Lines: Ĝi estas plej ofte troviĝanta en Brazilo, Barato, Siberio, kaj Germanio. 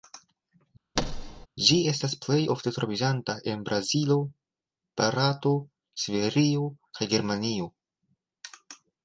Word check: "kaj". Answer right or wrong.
right